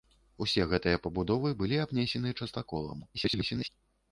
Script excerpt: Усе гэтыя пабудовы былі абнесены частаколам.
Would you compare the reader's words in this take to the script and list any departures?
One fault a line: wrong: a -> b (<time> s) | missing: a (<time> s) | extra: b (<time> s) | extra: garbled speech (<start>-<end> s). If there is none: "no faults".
extra: garbled speech (3.1-3.7 s)